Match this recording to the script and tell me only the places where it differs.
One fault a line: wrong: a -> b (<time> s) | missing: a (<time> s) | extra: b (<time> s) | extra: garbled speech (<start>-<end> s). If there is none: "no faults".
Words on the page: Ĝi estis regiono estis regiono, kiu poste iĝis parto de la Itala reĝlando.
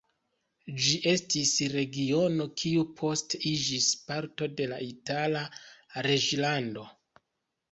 missing: estis regiono (2.5 s)